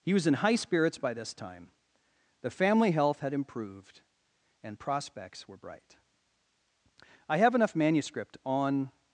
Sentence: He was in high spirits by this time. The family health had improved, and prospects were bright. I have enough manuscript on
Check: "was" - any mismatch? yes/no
no